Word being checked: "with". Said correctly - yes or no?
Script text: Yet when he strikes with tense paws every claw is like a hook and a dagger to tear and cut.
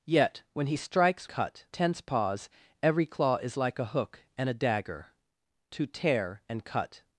no